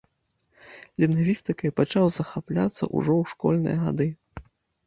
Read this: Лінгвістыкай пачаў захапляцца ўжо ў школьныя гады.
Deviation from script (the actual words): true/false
false